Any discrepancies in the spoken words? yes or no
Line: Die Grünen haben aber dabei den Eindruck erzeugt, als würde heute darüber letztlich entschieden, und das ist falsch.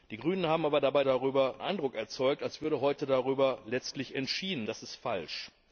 yes